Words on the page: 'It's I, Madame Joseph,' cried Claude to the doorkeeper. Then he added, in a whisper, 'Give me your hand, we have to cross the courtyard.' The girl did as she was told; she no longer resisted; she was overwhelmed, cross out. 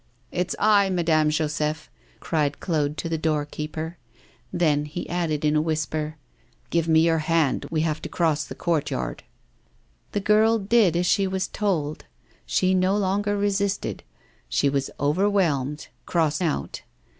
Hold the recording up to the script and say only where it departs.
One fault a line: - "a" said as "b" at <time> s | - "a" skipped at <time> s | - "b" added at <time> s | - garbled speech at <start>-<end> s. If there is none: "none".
none